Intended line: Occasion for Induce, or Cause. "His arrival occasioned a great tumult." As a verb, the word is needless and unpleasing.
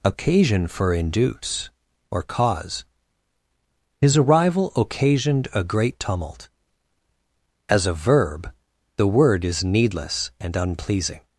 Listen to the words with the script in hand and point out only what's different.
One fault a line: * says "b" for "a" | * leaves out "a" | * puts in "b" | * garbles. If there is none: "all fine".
all fine